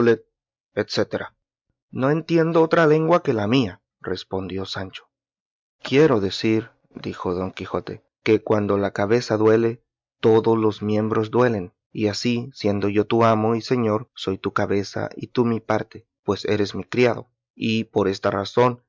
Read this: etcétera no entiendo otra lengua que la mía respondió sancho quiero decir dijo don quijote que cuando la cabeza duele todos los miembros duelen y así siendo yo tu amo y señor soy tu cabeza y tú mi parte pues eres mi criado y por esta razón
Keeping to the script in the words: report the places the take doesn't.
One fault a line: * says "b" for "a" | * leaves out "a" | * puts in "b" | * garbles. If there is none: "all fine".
all fine